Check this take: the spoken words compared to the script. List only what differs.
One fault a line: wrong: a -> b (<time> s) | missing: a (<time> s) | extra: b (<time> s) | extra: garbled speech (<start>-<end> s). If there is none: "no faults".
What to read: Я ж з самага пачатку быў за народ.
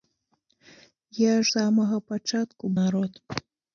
missing: з (1.4 s)
missing: быў за (2.6 s)